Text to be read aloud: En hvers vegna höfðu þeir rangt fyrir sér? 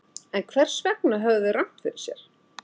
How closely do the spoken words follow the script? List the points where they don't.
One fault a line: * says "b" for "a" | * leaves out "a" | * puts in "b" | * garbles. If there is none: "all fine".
all fine